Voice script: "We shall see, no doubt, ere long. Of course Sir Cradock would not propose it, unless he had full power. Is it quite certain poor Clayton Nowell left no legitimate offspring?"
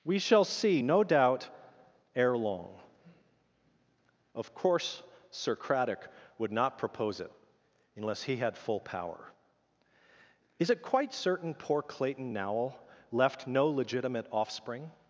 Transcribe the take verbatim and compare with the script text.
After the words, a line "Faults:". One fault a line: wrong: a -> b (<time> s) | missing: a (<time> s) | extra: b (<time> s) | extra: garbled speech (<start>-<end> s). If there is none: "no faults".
"We shall see, no doubt, ere long. Of course Sir Cradock would not propose it, unless he had full power. Is it quite certain poor Clayton Nowell left no legitimate offspring?"
Faults:
no faults